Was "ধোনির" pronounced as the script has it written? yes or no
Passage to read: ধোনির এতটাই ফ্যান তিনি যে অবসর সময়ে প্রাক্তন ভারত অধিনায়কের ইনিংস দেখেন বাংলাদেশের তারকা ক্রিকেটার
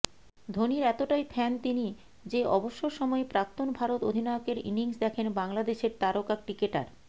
yes